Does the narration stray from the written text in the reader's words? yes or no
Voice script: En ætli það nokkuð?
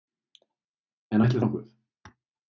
yes